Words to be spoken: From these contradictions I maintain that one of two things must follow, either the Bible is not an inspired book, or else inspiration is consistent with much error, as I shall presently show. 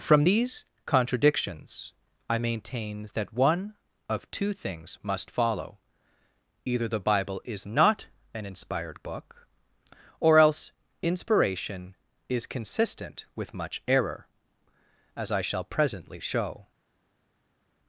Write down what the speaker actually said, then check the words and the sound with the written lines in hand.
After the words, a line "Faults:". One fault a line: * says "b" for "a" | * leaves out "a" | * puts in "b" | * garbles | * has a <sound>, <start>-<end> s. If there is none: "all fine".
From these contradictions I maintain that one of two things must follow, either the Bible is not an inspired book, or else inspiration is consistent with much error, as I shall presently show.
Faults:
all fine